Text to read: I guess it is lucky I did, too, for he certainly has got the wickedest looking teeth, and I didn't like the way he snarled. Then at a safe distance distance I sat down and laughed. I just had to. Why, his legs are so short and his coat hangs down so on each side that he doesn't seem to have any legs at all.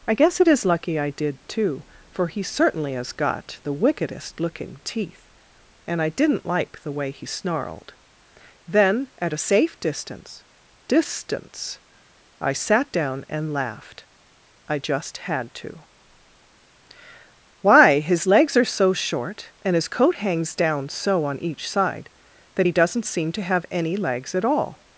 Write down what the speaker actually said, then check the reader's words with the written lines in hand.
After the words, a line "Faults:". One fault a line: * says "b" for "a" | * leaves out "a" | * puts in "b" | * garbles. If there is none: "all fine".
I guess it is lucky I did, too, for he certainly has got the wickedest looking teeth, and I didn't like the way he snarled. Then at a safe distance distance I sat down and laughed. I just had to. Why, his legs are so short and his coat hangs down so on each side that he doesn't seem to have any legs at all.
Faults:
all fine